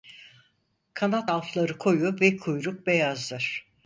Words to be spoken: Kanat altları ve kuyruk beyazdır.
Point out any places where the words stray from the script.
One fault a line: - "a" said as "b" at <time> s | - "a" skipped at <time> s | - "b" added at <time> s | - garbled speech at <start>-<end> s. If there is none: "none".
- "koyu" added at 1.8 s